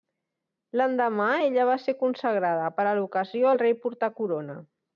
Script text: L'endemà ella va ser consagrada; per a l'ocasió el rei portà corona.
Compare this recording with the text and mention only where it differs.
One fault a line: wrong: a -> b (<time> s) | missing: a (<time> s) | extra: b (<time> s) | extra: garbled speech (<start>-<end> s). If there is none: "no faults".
no faults